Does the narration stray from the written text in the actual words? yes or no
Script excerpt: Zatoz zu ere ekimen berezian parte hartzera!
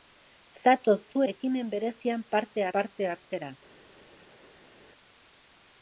yes